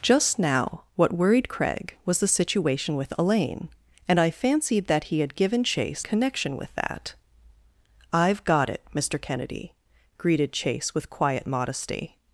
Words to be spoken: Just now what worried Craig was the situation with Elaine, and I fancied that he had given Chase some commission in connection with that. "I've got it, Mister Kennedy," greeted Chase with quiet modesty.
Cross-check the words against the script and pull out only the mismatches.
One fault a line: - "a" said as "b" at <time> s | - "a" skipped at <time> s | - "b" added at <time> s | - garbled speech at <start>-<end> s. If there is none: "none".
- "some commission in" skipped at 6.0 s